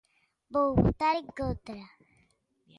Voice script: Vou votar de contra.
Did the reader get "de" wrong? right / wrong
wrong